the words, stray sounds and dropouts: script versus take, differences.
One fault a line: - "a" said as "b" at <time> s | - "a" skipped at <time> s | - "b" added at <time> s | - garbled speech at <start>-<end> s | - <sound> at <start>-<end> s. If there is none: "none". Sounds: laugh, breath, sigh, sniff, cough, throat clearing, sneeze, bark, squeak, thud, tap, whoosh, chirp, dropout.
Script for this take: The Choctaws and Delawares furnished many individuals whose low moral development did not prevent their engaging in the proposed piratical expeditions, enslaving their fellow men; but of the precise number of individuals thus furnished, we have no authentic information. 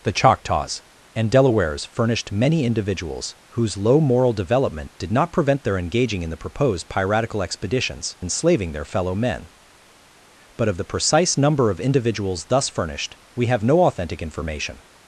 none